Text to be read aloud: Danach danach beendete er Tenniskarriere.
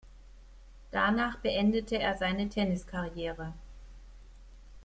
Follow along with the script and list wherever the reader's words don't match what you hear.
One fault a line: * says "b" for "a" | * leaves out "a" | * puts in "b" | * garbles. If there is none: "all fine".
* leaves out "danach"
* puts in "seine"